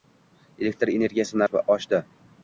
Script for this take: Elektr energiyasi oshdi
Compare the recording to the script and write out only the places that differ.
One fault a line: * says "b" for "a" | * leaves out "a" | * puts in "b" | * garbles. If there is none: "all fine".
all fine